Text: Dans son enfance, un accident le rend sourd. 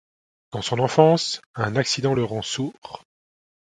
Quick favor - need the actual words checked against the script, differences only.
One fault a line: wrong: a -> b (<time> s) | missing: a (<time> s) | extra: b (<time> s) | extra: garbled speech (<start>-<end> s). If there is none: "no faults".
no faults